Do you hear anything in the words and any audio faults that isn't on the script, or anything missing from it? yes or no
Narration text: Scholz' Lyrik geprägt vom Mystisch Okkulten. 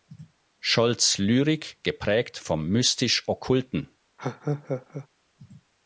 yes